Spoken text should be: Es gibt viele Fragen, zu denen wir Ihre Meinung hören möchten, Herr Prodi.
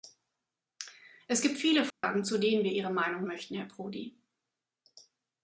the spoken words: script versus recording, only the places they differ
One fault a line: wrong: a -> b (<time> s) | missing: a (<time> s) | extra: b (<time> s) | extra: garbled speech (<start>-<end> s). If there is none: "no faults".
missing: hören (3.3 s)